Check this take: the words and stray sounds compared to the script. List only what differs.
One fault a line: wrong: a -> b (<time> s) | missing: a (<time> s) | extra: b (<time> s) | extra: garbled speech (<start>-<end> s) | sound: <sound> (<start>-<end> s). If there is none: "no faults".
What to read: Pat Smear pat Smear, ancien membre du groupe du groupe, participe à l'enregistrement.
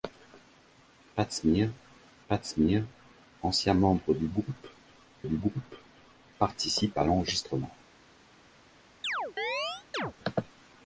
sound: chirp (9.0-10.1 s)